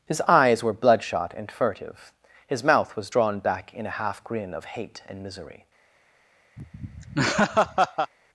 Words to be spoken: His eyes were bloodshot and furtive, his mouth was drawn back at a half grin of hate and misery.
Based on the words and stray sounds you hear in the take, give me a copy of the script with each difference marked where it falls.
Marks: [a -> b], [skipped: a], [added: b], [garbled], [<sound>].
His eyes were bloodshot and furtive, his mouth was drawn back [at -> in] a half grin of hate and misery. [laugh]